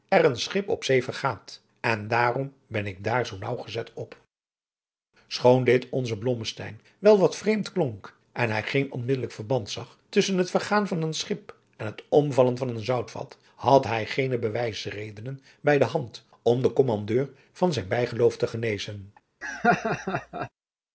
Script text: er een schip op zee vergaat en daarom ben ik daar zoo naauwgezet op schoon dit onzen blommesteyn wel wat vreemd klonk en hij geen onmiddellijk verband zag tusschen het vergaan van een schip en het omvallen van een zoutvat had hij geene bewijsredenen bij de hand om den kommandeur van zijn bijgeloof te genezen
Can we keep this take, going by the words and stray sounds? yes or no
no